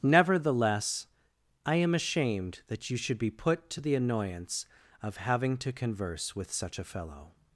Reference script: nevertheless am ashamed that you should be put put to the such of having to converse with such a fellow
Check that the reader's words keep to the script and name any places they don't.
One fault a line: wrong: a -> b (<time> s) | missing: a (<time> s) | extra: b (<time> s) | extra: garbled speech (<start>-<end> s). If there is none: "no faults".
extra: i (1.6 s)
missing: put (3.7 s)
wrong: such -> annoyance (4.0 s)